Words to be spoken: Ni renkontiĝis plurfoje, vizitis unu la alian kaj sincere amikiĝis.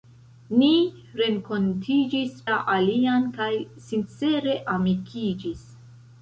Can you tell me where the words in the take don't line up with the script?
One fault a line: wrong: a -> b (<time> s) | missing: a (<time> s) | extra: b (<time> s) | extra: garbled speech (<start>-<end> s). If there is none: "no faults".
missing: plurfoje vizitis unu (2.4 s)